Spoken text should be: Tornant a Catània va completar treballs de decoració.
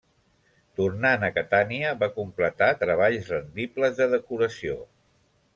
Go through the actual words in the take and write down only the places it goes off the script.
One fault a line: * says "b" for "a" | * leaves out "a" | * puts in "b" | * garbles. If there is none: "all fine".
* puts in "rendibles"